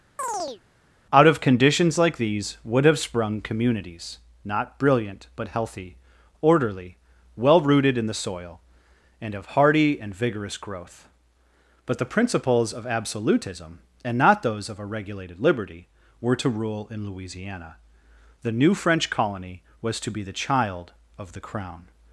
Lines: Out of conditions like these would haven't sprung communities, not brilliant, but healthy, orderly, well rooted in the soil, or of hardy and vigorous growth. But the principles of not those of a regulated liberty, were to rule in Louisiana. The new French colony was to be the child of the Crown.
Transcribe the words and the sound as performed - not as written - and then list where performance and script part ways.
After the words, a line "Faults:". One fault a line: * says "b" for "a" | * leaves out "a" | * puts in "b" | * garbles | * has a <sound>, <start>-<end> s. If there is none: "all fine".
Out of conditions like these would have sprung communities, not brilliant, but healthy, orderly, well rooted in the soil, and of hardy and vigorous growth. But the principles of absolutism, and not those of a regulated liberty, were to rule in Louisiana. The new French colony was to be the child of the Crown.
Faults:
* has a chirp, 0.2-0.6 s
* says "have" for "haven't"
* says "and" for "or"
* puts in "absolutism and"